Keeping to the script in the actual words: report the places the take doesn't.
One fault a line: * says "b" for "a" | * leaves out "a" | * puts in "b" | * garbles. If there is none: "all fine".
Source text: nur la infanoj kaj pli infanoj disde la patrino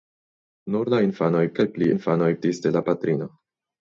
all fine